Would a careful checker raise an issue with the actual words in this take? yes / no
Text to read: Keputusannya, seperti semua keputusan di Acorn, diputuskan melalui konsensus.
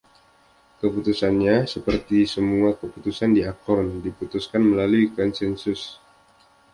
no